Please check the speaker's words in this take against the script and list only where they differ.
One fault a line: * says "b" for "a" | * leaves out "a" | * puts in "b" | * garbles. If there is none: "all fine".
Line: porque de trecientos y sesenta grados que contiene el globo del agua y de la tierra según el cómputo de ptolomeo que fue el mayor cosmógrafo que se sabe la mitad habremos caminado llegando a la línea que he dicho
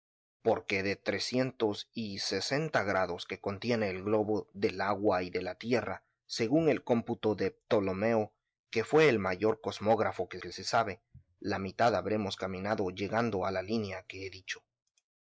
* puts in "que"